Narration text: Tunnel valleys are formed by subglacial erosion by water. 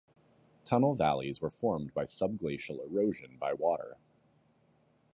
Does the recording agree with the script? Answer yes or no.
no